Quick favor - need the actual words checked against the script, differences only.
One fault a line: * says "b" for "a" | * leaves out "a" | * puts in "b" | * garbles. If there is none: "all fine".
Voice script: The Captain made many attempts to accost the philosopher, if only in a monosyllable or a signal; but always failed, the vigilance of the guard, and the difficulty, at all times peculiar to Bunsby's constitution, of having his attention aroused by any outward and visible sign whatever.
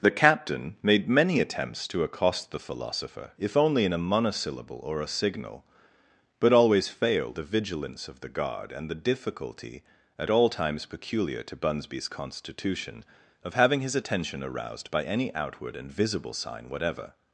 all fine